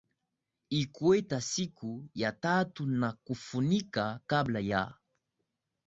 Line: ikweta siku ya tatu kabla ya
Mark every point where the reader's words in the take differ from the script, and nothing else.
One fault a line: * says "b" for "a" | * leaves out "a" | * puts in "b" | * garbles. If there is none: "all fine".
* puts in "na kufunika"